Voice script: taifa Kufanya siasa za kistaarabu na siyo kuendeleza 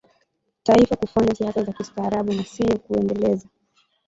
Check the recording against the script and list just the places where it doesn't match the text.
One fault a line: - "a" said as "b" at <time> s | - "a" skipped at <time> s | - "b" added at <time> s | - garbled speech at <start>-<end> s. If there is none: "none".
none